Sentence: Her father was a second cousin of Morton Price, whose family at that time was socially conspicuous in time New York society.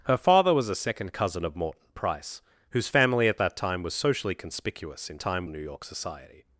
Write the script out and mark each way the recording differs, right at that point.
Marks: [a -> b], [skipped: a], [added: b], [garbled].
Her father was a second cousin of Morton Price, whose family at that time was socially conspicuous in time New York society.